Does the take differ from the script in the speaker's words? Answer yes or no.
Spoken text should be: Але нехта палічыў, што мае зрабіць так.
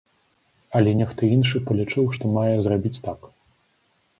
yes